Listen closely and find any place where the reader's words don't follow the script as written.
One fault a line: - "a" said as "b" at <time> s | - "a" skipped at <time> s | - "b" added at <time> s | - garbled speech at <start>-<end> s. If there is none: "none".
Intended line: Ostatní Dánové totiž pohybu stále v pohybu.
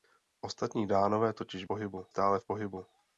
none